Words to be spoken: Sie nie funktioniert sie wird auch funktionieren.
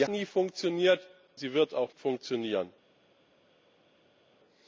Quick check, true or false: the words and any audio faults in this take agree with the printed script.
true